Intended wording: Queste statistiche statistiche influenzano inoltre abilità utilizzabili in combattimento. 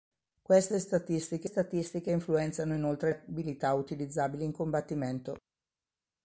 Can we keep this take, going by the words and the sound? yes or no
yes